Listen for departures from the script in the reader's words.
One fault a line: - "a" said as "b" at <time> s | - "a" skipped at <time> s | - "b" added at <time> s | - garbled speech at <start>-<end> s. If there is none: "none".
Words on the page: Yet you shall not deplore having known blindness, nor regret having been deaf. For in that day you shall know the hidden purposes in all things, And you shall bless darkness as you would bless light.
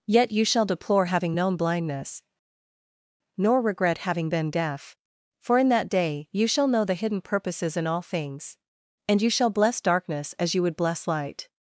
- "not" skipped at 0.7 s